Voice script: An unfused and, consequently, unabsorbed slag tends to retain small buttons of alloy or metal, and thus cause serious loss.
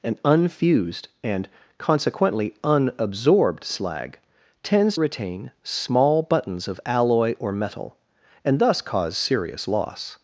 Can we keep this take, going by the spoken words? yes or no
no